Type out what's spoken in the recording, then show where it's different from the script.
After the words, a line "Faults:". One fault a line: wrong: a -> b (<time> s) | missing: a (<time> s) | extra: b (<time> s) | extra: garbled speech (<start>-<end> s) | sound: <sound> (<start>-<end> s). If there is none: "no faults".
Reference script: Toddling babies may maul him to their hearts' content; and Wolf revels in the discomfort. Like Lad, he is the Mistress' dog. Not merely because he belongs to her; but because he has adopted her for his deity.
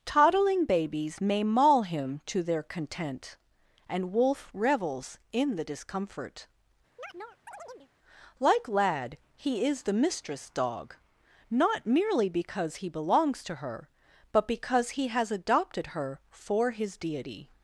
Toddling babies may maul him to their' content; and Wolf revels in the discomfort. Like Lad, he is the Mistress' dog. Not merely because he belongs to her; but because he has adopted her for his deity.
Faults:
missing: hearts (2.6 s)
sound: chirp (7.0-7.9 s)